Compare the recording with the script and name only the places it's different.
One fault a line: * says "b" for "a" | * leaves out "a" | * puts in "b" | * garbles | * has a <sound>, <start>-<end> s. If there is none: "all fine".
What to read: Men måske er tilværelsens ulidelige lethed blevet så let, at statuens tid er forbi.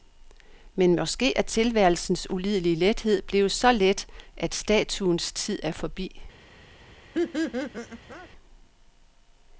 * has a laugh, 7.1-8.3 s